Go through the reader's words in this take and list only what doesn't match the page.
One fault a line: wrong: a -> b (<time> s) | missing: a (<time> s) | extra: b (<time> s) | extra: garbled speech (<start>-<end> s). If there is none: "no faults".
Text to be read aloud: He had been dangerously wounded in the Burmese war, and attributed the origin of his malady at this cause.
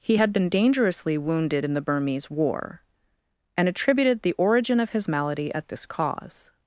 no faults